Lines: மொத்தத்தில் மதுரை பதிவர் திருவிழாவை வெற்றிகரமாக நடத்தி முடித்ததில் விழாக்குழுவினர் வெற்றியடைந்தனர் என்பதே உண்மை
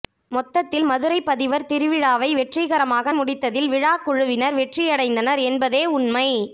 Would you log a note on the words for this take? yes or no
yes